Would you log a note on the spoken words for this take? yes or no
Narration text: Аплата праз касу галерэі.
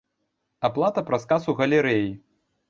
no